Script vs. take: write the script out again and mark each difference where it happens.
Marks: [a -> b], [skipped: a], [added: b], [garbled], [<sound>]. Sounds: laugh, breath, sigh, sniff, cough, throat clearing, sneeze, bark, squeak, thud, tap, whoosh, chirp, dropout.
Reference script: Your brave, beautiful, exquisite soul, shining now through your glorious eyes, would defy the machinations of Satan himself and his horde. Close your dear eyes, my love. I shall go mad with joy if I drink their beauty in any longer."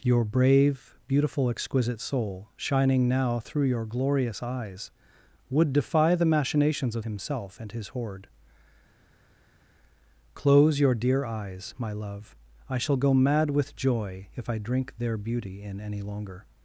Your brave, beautiful, exquisite soul, shining now through your glorious eyes, would defy the machinations of [skipped: Satan] himself and his horde. Close your dear eyes, my love. I shall go mad with joy if I drink their beauty in any longer."